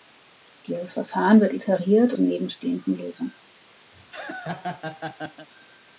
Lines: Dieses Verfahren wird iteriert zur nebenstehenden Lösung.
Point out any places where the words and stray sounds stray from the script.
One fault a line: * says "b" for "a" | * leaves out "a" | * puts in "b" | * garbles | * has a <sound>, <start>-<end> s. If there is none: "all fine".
* has a laugh, 3.9-5.5 s